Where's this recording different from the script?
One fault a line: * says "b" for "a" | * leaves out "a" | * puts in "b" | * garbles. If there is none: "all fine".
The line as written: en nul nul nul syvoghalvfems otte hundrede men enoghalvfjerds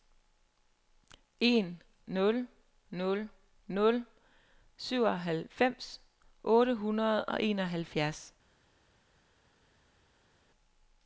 * says "og" for "men"